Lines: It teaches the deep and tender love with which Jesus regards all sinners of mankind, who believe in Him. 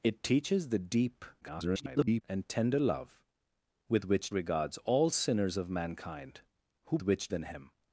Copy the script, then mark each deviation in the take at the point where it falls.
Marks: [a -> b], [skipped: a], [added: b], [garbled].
It teaches the deep [garbled] and tender love with which [skipped: Jesus] regards all sinners of mankind, who [believe -> which] in Him.